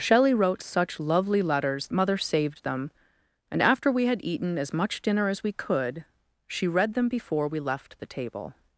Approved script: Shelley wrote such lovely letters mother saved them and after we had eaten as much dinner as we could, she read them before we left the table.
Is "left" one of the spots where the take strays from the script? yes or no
no